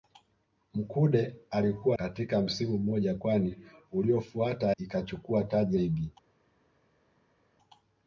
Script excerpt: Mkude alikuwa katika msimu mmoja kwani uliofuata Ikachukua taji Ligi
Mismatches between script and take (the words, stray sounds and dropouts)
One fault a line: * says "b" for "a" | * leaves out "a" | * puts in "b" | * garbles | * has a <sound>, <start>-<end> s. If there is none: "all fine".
all fine